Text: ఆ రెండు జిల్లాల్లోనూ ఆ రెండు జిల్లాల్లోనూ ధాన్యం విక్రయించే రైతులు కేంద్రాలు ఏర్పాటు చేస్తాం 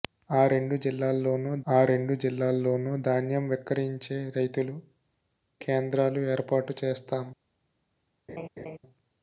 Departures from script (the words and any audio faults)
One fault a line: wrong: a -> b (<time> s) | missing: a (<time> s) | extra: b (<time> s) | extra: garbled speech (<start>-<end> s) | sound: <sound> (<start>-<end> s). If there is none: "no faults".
sound: laugh (8.3-8.8 s)